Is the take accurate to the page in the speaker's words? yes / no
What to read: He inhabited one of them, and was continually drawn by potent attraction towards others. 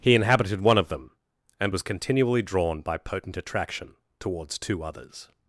no